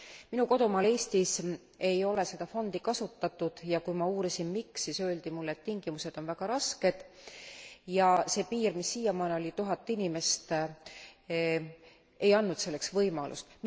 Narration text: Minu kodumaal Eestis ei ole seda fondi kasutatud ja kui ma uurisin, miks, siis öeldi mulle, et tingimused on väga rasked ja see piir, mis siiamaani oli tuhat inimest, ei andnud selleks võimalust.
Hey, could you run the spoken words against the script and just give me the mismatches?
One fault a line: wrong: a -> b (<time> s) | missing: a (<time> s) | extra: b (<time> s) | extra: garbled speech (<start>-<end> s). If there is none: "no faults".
no faults